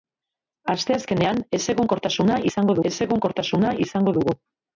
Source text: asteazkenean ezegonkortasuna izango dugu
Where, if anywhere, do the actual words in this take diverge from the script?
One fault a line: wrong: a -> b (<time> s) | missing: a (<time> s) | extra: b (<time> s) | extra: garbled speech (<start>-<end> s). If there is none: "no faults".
extra: ezegonkortasuna izango (2.9 s)